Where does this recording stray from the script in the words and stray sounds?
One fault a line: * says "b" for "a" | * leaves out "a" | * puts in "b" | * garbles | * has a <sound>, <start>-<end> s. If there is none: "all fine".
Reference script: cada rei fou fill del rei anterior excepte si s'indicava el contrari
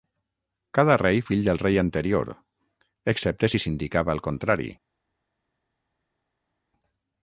* leaves out "fou"